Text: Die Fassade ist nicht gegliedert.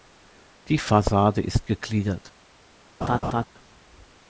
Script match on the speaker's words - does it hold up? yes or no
no